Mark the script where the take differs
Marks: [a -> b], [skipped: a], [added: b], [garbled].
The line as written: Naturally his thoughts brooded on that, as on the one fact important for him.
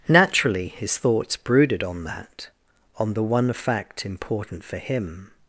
Naturally his thoughts brooded on that, [skipped: as] on the one fact important for him.